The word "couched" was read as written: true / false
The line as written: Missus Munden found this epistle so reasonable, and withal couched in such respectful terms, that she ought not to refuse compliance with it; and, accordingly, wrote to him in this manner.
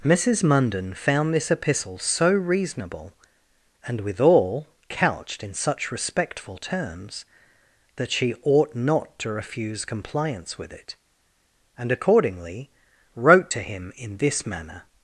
true